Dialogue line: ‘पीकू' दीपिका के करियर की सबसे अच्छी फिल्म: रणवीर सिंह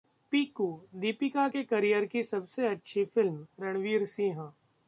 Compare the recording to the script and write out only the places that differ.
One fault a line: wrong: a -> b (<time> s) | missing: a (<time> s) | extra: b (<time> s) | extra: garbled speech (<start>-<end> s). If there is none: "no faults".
no faults